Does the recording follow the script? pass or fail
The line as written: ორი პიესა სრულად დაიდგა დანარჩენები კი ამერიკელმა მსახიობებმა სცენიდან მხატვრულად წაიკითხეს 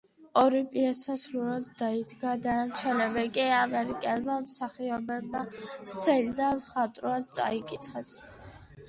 pass